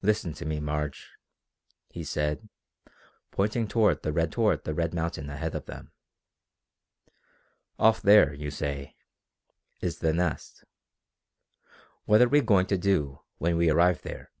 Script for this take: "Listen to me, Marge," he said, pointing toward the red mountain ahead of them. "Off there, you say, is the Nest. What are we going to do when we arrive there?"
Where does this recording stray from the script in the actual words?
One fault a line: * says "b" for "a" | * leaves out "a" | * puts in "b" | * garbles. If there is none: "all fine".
* puts in "toward the red"